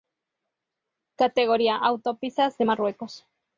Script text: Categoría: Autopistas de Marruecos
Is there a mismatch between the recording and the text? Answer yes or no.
no